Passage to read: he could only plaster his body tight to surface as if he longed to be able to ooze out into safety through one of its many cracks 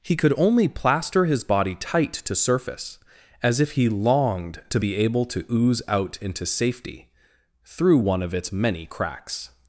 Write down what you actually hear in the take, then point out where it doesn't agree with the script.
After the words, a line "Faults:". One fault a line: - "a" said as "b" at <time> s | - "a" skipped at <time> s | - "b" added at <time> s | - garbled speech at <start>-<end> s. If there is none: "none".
he could only plaster his body tight to surface as if he longed to be able to ooze out into safety through one of its many cracks
Faults:
none